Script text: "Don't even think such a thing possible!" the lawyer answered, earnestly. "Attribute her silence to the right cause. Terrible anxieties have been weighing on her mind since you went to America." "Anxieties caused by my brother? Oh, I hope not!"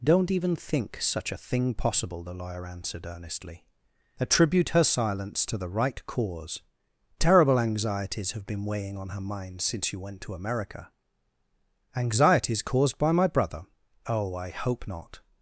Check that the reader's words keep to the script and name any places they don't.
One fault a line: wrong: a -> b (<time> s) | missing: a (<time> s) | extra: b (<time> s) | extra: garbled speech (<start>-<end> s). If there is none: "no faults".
no faults